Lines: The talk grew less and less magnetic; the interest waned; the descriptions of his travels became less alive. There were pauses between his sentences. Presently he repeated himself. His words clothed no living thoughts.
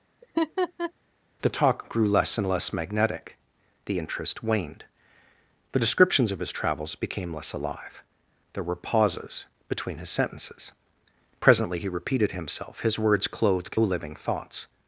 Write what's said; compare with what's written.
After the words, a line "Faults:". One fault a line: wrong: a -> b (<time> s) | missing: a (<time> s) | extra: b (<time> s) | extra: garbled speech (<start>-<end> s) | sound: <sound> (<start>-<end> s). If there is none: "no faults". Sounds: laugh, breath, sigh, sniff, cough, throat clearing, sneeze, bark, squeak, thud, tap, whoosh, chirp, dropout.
The talk grew less and less magnetic; the interest waned; the descriptions of his travels became less alive. There were pauses between his sentences. Presently he repeated himself. His words clothed living thoughts.
Faults:
sound: laugh (0.2-0.9 s)
missing: no (13.8 s)